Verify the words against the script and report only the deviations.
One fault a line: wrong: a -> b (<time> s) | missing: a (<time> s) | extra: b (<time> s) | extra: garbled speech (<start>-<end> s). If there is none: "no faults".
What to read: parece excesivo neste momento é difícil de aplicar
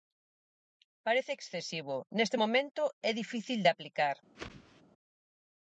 no faults